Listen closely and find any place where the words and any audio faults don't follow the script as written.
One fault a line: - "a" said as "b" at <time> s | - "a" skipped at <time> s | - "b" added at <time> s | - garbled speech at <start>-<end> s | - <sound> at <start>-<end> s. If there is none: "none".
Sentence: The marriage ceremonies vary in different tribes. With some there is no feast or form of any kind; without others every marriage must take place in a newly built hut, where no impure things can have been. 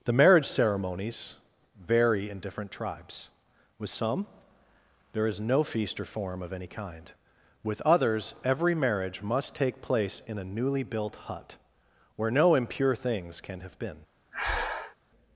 - "without" said as "with" at 7.6 s
- breath at 14.3-15.0 s